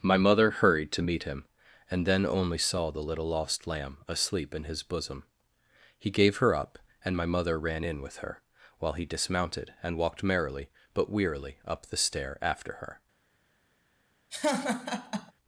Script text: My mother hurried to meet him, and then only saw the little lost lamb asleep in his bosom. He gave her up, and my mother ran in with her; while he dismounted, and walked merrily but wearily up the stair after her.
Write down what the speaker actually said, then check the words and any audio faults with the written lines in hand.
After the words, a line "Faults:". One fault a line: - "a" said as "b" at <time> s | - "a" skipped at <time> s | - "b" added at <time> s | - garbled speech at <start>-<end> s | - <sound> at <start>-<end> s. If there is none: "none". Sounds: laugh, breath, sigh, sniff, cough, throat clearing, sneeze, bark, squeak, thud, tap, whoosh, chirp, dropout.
My mother hurried to meet him, and then only saw the little lost lamb asleep in his bosom. He gave her up, and my mother ran in with her; while he dismounted, and walked merrily but wearily up the stair after her.
Faults:
- laugh at 14.3-15.3 s